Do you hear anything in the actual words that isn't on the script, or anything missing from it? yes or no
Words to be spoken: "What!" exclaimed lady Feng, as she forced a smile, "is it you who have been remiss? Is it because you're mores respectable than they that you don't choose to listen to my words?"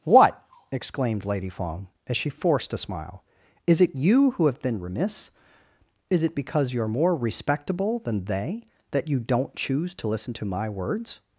yes